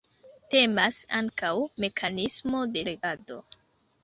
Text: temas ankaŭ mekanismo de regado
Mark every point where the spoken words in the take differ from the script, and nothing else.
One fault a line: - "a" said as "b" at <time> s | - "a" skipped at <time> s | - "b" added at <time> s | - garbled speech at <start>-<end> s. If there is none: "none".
none